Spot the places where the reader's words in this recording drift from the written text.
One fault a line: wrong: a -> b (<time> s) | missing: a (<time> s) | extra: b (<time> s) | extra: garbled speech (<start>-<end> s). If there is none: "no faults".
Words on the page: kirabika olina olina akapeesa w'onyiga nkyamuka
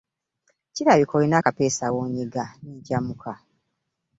missing: olina (1.4 s)
extra: ne (2.6 s)